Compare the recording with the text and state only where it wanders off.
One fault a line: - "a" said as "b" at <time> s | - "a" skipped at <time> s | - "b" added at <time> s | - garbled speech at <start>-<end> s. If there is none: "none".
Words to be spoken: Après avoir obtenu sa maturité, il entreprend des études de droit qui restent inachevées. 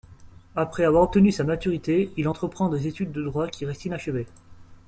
none